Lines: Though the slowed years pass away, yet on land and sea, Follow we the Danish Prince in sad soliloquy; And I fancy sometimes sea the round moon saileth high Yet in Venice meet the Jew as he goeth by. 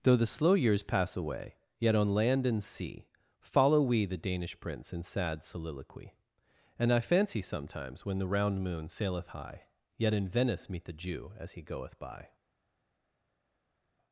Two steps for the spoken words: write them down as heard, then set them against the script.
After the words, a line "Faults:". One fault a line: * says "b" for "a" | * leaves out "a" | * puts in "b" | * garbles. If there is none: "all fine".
Though the slow years pass away, yet on land and sea, Follow we the Danish Prince in sad soliloquy; And I fancy sometimes when the round moon saileth high Yet in Venice meet the Jew as he goeth by.
Faults:
* says "slow" for "slowed"
* says "when" for "sea"